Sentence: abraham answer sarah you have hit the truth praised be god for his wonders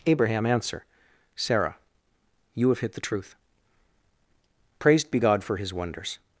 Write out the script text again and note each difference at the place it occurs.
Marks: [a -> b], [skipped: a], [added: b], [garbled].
abraham answer sarah you have hit the truth praised be god for his wonders